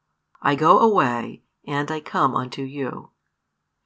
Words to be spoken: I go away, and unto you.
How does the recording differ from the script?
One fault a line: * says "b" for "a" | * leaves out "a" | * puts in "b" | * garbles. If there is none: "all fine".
* puts in "I come"